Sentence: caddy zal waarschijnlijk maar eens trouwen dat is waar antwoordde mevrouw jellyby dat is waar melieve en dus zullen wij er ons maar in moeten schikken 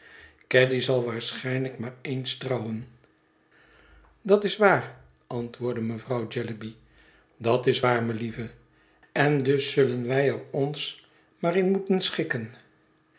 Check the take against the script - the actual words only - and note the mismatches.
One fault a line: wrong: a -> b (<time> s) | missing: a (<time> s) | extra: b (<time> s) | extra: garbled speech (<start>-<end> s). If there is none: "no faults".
no faults